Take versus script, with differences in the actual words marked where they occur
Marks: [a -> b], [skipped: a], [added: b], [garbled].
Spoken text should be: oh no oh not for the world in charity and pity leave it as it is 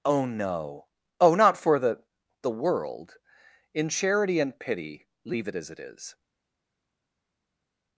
oh no oh not for the [added: the] world in charity and pity leave it as it is